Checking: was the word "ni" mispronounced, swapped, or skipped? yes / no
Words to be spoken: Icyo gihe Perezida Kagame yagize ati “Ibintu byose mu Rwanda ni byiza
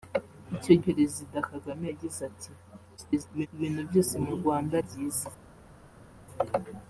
yes